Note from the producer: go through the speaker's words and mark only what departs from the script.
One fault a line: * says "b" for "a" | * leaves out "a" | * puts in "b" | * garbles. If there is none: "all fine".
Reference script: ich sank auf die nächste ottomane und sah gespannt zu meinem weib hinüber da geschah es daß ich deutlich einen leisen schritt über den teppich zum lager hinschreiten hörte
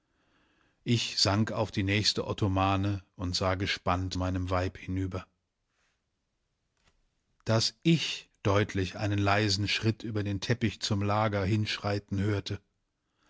* leaves out "zu"
* leaves out "da geschah es"